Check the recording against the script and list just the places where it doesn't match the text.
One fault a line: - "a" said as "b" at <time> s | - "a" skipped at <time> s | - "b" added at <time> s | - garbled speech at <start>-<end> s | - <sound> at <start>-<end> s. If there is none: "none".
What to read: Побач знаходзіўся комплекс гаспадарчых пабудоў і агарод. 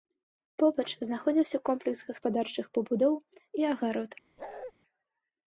- bark at 4.4-4.7 s